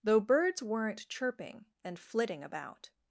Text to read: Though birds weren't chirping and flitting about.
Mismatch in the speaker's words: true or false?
false